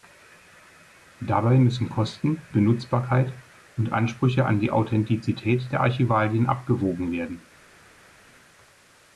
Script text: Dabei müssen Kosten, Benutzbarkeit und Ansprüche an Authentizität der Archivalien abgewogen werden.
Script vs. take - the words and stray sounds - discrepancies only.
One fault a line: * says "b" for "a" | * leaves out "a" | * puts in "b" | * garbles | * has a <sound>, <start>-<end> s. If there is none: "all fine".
* puts in "die"